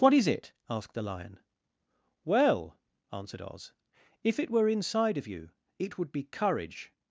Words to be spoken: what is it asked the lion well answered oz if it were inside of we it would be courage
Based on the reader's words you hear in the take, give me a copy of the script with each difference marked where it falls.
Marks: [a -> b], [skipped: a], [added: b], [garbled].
what is it asked the lion well answered oz if it were inside of [we -> you] it would be courage